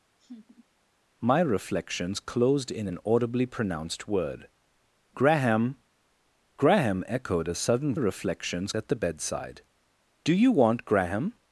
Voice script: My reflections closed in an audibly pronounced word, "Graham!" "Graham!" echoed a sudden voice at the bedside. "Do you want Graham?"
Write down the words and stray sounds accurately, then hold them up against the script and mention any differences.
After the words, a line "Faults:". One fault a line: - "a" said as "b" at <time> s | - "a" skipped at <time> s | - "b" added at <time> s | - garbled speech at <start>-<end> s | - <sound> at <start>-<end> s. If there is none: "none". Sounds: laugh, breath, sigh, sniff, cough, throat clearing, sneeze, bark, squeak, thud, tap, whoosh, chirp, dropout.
My reflections closed in an audibly pronounced word, "Graham!" "Graham!" echoed a sudden reflections at the bedside. "Do you want Graham?"
Faults:
- laugh at 0.2-0.6 s
- "voice" said as "reflections" at 7.9 s